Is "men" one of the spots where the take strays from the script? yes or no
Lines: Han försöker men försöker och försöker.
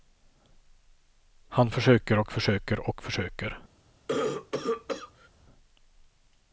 yes